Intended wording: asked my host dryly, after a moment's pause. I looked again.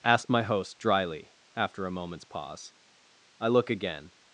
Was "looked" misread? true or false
true